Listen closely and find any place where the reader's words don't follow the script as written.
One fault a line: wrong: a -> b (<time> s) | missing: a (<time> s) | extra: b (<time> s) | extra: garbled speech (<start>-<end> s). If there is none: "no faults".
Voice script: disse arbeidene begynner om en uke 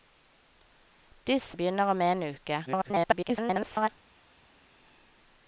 missing: arbeidene (1.6 s)
extra: garbled speech (2.7-3.9 s)